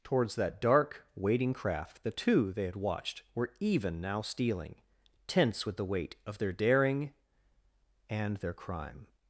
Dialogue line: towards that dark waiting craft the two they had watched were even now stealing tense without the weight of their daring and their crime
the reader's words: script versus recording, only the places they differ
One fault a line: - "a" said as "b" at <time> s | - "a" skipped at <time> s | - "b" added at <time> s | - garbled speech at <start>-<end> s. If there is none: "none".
- "without" said as "with" at 5.6 s